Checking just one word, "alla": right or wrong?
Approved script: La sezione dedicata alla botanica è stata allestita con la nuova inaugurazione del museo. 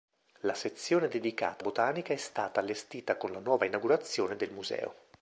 wrong